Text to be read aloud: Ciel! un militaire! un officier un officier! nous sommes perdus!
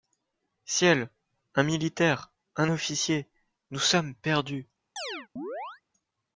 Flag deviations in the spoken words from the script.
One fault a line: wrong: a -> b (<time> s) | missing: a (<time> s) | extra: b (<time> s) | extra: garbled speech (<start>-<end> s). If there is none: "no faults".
missing: un officier (3.3 s)